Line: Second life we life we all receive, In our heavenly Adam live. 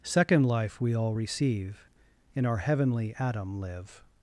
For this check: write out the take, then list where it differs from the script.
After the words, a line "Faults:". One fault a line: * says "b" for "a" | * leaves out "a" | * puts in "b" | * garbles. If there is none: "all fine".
Second life we all receive, In our heavenly Adam live.
Faults:
* leaves out "life we"